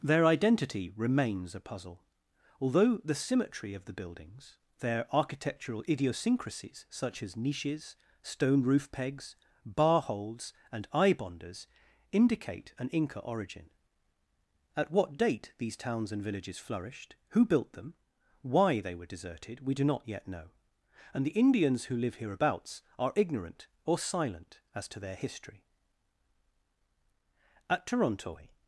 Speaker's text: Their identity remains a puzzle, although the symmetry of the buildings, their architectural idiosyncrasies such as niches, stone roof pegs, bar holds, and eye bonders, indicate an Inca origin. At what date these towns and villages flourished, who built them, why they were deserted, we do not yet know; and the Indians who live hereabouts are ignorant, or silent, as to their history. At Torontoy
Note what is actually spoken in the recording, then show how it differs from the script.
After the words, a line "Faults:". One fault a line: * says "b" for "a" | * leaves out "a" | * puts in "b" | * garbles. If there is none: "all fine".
Their identity remains a puzzle, although the symmetry of the buildings, their architectural idiosyncrasies such as niches, stone roof pegs, bar holds, and eye bonders, indicate an Inca origin. At what date these towns and villages flourished, who built them, why they were deserted, we do not yet know; and the Indians who live hereabouts are ignorant, or silent, as to their history. At Torontoy
Faults:
all fine